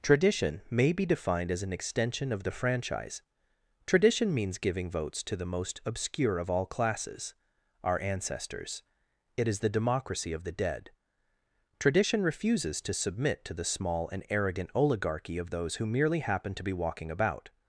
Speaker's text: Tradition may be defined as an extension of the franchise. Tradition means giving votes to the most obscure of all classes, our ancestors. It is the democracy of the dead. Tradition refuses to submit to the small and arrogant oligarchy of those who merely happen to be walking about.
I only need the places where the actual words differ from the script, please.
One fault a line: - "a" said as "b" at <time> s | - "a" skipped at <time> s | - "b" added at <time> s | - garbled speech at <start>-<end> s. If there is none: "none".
none